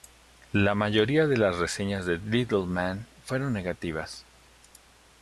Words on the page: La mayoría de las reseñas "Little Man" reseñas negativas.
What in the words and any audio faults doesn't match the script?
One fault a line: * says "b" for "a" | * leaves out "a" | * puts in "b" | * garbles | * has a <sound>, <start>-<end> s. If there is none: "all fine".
* puts in "de"
* says "fueron" for "reseñas"